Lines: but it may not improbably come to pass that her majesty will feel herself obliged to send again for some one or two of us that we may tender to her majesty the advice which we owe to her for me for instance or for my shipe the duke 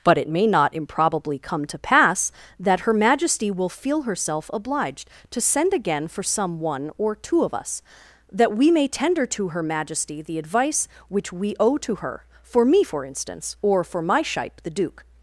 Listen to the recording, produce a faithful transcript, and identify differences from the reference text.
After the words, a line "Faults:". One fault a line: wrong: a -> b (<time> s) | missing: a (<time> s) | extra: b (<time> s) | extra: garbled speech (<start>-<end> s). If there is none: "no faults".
but it may not improbably come to pass that her majesty will feel herself obliged to send again for some one or two of us that we may tender to her majesty the advice which we owe to her for me for instance or for my shipe the duke
Faults:
no faults